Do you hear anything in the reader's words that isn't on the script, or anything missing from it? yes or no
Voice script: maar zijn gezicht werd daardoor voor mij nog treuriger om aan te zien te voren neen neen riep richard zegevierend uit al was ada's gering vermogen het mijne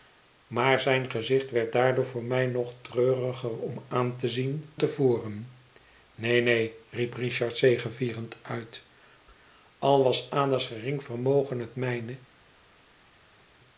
no